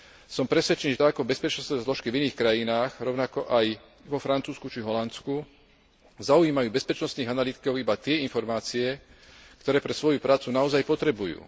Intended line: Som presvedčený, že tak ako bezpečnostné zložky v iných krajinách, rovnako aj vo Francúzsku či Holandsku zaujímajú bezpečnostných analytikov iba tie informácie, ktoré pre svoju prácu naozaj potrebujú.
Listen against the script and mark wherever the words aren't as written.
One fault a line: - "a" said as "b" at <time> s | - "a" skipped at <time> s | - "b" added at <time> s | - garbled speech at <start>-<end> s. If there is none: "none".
none